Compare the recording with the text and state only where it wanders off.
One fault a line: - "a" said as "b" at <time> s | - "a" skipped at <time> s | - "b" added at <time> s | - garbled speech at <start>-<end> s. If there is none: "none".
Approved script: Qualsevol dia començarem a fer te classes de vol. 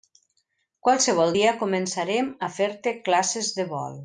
none